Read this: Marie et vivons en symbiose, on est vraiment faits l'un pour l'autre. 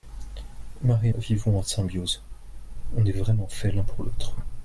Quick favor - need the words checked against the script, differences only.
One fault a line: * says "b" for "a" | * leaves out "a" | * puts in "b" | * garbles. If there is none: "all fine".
all fine